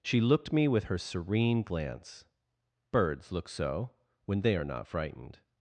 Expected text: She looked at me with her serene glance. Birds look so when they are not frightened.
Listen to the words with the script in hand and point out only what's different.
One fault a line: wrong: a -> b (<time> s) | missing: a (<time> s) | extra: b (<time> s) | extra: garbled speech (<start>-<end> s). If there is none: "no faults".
missing: at (0.5 s)